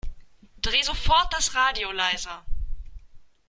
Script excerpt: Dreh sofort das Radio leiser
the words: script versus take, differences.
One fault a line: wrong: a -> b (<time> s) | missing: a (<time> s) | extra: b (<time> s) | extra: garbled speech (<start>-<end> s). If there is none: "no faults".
no faults